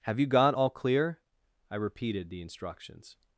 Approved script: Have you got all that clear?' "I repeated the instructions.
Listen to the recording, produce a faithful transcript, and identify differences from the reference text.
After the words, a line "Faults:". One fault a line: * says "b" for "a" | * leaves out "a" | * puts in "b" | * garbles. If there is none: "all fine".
Have you got all clear?' "I repeated the instructions.
Faults:
* leaves out "that"